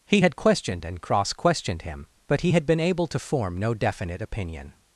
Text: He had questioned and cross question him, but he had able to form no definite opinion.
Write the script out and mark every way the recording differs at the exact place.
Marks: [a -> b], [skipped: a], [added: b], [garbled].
He had questioned and cross [question -> questioned] him, but he had [added: been] able to form no definite opinion.